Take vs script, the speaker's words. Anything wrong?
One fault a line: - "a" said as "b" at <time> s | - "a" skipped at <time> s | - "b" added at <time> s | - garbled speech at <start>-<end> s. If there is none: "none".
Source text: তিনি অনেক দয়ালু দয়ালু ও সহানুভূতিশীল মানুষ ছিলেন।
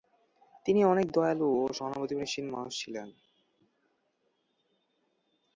- "দয়ালু" skipped at 1.5 s